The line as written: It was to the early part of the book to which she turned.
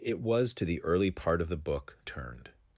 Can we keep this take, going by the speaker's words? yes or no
no